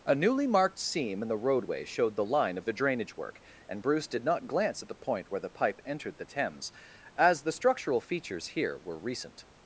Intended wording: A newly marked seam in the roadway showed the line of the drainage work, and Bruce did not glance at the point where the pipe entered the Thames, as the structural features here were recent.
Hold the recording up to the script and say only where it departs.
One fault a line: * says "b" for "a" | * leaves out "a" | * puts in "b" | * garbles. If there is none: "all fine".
all fine